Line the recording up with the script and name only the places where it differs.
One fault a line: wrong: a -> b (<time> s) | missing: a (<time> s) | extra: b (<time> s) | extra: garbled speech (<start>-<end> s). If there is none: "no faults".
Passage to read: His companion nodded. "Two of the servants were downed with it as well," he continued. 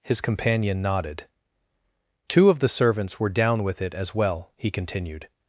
wrong: downed -> down (3.3 s)